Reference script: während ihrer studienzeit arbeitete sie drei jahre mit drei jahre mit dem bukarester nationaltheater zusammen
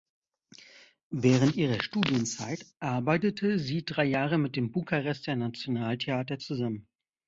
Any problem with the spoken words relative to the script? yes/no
yes